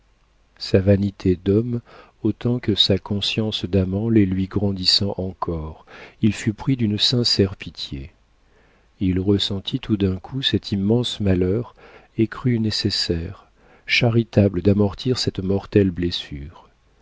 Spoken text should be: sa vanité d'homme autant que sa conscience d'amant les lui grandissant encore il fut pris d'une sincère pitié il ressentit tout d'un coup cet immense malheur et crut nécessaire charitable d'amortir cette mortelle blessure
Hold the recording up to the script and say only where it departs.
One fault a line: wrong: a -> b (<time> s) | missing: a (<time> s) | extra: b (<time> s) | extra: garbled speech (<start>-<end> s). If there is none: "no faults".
no faults